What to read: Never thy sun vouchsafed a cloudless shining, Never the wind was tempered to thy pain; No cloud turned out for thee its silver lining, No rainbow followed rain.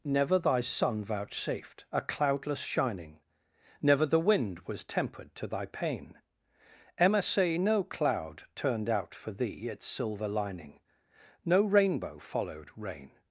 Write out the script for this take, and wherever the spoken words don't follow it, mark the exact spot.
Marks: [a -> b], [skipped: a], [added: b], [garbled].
Never thy sun vouchsafed a cloudless shining, Never the wind was tempered to thy pain; [added: emma say] No cloud turned out for thee its silver lining, No rainbow followed rain.